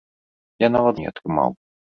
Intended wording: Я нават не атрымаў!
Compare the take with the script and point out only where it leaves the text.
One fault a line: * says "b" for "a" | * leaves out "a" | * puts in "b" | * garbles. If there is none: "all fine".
all fine